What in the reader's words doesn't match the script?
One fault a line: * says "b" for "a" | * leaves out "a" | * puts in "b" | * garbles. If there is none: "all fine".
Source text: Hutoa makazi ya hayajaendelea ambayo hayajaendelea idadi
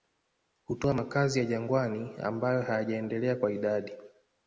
* says "jangwani" for "hayajaendelea"
* puts in "kwa"